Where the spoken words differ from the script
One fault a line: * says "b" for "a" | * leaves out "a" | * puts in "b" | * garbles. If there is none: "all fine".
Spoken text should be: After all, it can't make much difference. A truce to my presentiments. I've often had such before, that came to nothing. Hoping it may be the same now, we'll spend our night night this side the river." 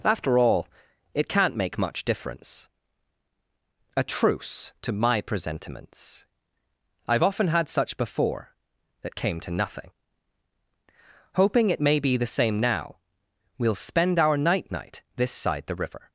all fine